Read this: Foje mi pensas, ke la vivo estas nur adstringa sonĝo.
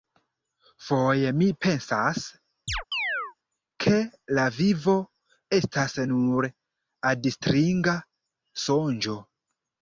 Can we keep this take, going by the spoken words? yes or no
yes